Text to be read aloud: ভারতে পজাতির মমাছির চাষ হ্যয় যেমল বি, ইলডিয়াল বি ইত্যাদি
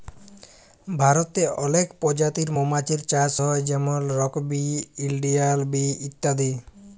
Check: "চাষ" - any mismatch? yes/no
no